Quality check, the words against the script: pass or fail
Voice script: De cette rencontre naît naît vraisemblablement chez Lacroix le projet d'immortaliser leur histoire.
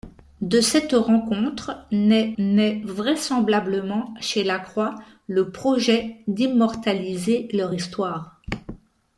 pass